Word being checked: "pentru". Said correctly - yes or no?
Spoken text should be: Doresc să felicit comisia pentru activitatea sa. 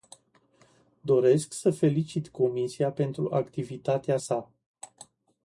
yes